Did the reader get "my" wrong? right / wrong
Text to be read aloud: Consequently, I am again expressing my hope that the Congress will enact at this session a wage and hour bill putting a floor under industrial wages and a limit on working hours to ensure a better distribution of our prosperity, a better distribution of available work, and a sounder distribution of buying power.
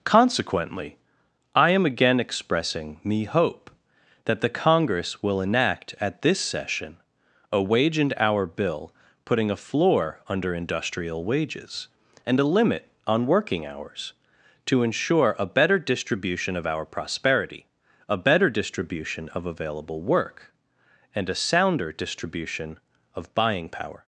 wrong